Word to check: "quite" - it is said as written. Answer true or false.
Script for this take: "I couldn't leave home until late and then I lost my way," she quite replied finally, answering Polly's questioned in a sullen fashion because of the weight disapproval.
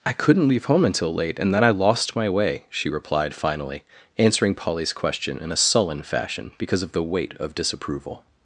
false